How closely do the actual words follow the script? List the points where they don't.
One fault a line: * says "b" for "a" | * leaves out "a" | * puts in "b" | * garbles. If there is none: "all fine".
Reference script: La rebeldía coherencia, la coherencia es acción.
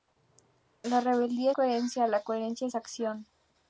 all fine